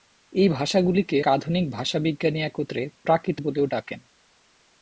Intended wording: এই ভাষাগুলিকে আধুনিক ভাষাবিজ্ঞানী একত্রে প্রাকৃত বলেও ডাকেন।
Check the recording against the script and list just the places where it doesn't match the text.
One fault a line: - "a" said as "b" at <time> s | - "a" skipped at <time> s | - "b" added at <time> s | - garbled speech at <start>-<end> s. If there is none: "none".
none